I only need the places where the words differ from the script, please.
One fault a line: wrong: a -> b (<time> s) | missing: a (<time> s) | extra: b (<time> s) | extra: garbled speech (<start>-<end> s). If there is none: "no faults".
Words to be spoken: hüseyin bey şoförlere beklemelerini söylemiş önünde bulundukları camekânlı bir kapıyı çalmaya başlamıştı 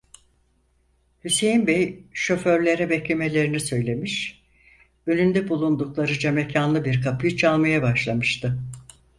no faults